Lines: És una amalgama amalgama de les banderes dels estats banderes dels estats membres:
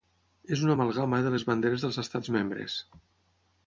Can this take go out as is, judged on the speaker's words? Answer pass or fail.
fail